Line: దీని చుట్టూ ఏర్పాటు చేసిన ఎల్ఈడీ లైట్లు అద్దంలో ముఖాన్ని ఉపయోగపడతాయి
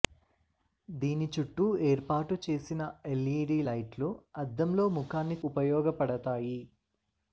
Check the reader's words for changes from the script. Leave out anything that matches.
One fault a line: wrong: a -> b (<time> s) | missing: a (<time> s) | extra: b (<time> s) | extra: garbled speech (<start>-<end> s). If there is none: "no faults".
no faults